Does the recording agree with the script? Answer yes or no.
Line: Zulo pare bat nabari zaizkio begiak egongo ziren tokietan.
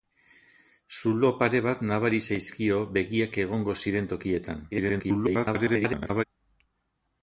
no